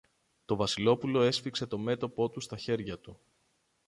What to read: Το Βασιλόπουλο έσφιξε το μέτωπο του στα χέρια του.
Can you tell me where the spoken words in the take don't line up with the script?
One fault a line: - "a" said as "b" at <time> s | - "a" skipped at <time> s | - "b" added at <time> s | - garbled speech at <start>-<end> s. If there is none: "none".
none